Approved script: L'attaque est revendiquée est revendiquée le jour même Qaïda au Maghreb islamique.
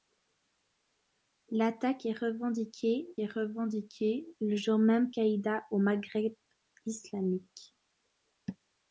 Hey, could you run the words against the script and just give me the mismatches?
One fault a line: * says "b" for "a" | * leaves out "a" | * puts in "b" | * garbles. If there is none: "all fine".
all fine